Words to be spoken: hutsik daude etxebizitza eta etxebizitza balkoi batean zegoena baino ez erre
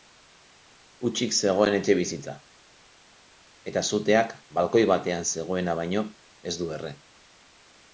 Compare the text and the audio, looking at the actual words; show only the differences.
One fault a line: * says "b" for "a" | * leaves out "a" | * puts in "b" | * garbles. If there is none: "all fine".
* says "zegoen" for "daude"
* says "suteak" for "etxebizitza"
* puts in "du"